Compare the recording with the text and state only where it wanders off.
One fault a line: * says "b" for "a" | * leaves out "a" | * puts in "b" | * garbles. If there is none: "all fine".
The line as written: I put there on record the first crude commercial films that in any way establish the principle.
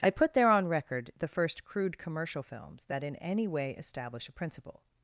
* says "a" for "the"